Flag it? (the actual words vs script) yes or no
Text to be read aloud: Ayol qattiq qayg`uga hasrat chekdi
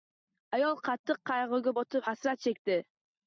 yes